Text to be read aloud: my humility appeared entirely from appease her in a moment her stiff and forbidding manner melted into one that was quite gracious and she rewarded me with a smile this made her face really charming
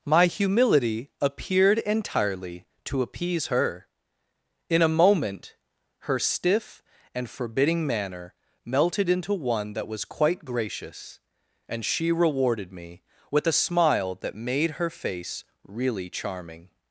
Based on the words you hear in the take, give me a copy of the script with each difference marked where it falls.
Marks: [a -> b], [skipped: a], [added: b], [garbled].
my humility appeared entirely [from -> to] appease her in a moment her stiff and forbidding manner melted into one that was quite gracious and she rewarded me with a smile [this -> that] made her face really charming